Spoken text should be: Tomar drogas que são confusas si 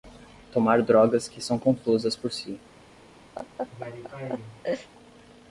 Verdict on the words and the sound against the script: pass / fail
fail